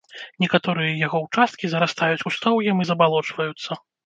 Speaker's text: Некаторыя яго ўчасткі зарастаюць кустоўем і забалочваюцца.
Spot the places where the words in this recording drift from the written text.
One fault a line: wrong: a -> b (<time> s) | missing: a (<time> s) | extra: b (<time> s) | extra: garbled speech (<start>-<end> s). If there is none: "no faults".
no faults